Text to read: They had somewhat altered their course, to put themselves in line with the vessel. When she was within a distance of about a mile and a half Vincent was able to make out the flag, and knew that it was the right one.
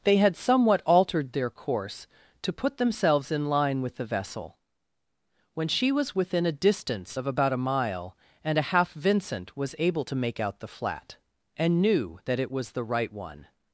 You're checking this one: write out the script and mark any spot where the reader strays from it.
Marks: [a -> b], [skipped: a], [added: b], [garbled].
They had somewhat altered their course, to put themselves in line with the vessel. When she was within a distance of about a mile and a half Vincent was able to make out the [flag, -> flat] and knew that it was the right one.